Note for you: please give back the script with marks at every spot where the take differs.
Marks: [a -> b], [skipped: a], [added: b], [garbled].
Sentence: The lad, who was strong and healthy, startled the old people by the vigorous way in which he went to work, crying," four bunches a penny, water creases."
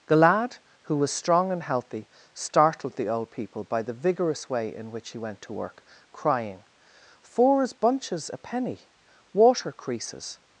The lad, who was strong and healthy, startled the old people by the vigorous way in which he went to work, crying," [four -> fours] bunches a penny, water creases."